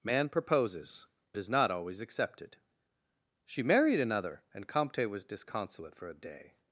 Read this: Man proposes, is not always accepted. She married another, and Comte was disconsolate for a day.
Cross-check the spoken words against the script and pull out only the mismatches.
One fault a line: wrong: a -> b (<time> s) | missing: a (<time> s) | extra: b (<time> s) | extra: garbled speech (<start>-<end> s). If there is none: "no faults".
no faults